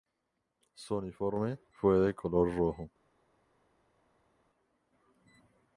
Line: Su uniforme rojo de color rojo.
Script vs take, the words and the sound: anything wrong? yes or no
yes